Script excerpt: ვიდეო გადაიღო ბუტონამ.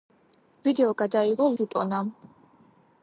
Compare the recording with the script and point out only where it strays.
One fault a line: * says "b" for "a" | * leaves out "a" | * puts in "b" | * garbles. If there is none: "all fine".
all fine